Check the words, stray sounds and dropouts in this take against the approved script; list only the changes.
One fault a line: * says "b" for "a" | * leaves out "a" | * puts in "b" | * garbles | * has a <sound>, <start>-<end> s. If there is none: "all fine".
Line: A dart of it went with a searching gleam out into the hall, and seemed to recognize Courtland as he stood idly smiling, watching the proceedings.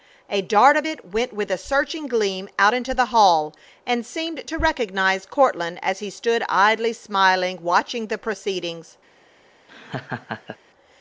* has a laugh, 9.7-10.6 s